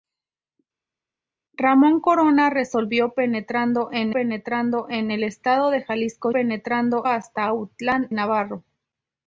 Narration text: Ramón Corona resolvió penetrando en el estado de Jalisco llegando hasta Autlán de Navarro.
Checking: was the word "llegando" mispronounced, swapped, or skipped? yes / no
yes